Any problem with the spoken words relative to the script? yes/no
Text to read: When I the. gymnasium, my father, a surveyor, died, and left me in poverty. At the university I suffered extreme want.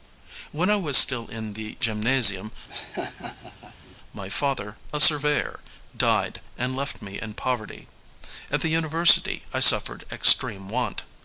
yes